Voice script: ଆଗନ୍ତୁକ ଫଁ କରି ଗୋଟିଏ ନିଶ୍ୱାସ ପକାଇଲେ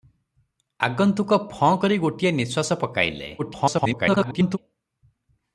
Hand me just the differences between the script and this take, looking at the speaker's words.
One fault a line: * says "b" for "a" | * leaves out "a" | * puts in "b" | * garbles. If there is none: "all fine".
* garbles